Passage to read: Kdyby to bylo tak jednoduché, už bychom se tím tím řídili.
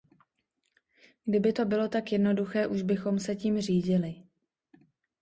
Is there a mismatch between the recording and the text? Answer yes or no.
yes